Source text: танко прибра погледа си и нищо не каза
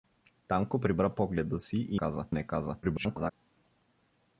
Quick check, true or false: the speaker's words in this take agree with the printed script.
false